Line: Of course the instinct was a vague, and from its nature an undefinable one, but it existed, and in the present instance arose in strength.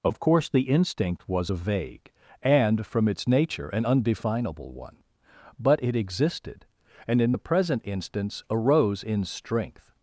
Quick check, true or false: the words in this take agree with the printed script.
true